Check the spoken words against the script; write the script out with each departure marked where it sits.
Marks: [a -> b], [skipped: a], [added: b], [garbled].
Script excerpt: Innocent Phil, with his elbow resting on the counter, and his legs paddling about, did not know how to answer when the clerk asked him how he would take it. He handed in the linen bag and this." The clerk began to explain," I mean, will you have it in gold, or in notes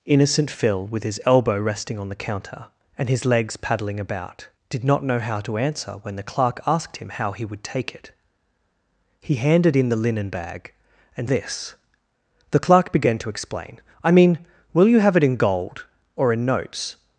Innocent Phil, with his elbow resting on the counter, and his legs paddling about, did not know how to answer when the clerk asked him how he would take it. He handed in the linen bag and this." The clerk began to explain," I mean, will you have it in gold, or in notes